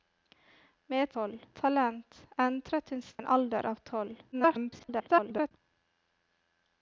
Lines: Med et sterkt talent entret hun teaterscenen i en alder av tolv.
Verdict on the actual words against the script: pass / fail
fail